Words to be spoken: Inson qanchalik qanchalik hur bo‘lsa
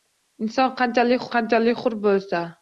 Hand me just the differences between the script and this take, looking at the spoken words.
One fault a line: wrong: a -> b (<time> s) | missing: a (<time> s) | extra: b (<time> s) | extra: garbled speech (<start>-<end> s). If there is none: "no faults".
no faults